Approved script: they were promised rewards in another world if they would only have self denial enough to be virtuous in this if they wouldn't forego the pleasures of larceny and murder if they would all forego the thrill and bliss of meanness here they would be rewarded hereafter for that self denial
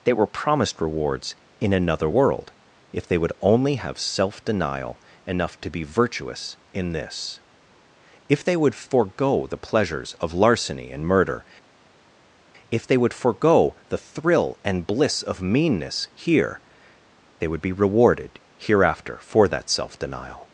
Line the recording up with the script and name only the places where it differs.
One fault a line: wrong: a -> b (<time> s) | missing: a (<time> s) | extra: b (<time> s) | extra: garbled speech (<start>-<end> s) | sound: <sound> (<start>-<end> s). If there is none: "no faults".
wrong: wouldn't -> would (8.6 s)
missing: all (13.1 s)